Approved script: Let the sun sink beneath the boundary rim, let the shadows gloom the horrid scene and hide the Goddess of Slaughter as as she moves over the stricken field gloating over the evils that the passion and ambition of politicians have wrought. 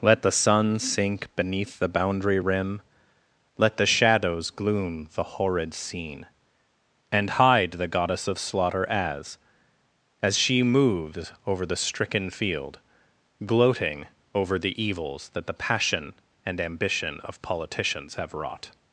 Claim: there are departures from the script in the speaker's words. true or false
false